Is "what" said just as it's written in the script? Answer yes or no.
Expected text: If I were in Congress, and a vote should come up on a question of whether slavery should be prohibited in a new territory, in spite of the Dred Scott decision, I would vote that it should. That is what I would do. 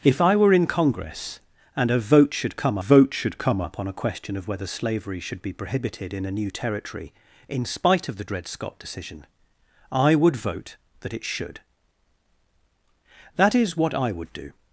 yes